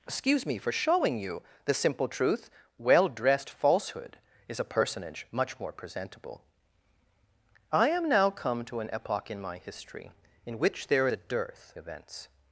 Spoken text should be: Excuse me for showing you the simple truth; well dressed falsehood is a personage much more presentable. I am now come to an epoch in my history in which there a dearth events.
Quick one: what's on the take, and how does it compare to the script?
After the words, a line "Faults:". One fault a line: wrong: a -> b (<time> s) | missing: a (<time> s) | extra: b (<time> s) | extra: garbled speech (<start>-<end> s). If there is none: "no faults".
Excuse me for showing you the simple truth; well dressed falsehood is a personage much more presentable. I am now come to an epoch in my history in which there a dearth events.
Faults:
no faults